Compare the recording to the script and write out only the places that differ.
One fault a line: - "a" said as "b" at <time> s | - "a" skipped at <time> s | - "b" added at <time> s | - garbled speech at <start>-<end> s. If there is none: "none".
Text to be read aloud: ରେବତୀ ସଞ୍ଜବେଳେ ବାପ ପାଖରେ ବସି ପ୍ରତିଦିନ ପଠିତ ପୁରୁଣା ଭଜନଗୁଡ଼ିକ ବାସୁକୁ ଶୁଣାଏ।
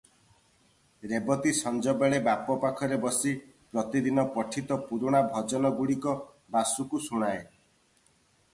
none